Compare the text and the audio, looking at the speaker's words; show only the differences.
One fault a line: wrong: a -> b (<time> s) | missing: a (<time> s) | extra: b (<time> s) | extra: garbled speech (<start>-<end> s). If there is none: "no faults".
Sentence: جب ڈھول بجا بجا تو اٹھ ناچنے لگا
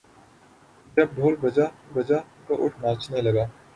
no faults